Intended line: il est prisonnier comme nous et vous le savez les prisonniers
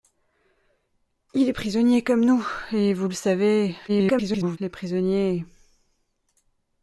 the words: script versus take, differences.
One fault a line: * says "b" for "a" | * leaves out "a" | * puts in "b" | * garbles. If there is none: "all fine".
* garbles